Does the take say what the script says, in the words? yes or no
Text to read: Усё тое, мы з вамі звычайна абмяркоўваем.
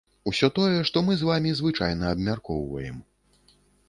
no